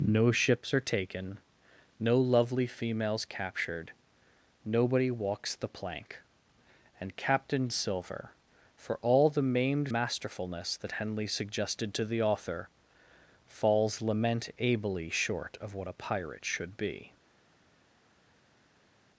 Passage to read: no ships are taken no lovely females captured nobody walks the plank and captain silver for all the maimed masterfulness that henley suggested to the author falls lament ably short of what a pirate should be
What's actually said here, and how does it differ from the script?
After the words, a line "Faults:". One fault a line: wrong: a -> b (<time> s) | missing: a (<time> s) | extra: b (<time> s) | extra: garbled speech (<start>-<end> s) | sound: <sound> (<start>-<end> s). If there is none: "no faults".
no ships are taken no lovely females captured nobody walks the plank and captain silver for all the maimed masterfulness that henley suggested to the author falls lament ably short of what a pirate should be
Faults:
no faults